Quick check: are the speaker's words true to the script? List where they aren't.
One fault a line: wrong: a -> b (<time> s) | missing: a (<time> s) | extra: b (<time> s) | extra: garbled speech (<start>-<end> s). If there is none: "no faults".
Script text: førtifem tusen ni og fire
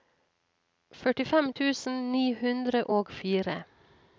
extra: hundre (2.4 s)